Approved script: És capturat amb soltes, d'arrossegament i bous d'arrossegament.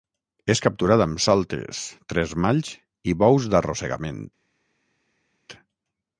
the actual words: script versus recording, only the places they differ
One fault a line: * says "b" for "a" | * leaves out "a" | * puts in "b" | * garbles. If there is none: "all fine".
* says "tresmalls" for "d'arrossegament"